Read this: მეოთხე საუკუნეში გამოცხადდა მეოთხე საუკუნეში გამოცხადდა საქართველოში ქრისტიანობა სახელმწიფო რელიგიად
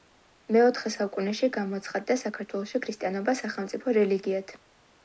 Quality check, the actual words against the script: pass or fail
fail